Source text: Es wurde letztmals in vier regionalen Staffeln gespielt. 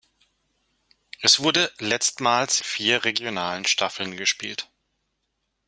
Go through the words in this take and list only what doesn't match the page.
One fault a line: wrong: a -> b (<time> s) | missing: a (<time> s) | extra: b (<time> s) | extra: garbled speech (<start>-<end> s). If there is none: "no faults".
missing: in (2.6 s)